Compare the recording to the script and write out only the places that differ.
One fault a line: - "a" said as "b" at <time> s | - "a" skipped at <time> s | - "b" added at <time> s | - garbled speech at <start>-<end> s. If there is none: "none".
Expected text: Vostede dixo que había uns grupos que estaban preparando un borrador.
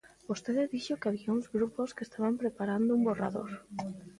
none